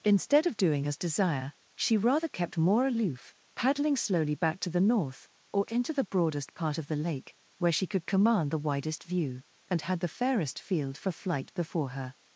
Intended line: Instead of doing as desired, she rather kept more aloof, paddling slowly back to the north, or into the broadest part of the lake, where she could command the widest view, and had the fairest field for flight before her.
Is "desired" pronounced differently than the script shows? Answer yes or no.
yes